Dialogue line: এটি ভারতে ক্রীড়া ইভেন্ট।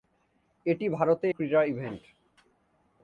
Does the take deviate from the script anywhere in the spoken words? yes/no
no